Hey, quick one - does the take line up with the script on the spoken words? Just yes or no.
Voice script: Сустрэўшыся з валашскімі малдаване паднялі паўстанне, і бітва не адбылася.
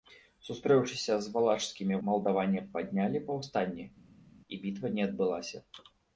yes